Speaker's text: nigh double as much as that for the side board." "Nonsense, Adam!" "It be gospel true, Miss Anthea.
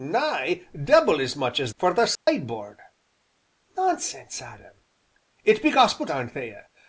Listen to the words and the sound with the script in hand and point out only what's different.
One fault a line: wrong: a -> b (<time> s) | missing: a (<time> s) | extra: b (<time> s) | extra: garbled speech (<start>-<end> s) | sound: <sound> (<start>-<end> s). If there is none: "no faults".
missing: that (1.7 s)
sound: dropout (2.1-2.3 s)
missing: true Miss (6.1 s)